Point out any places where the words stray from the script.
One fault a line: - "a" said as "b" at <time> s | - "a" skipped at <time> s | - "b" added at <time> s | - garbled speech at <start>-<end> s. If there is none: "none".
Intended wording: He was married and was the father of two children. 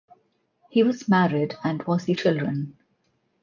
- "father of two" skipped at 2.1 s